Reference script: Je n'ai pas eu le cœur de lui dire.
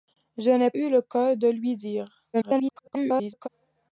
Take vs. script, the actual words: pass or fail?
fail